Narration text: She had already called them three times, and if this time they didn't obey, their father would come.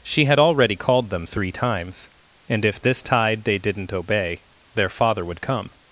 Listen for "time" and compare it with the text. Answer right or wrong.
wrong